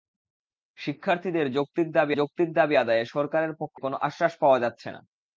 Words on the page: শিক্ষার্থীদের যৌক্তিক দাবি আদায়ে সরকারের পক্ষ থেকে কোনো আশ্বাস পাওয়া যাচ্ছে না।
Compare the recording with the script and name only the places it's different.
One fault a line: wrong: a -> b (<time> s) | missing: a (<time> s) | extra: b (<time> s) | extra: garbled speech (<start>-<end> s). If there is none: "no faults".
extra: যৌক্তিক দাবি (2.1 s)
missing: থেকে (3.8 s)